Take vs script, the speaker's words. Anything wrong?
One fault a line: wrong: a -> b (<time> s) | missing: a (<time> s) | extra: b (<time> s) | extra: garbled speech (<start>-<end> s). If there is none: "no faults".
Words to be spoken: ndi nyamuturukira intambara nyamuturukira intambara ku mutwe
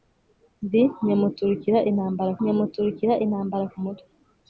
no faults